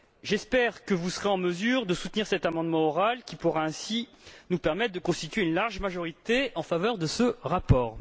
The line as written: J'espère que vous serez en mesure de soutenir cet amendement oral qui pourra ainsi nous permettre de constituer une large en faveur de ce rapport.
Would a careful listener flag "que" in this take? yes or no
no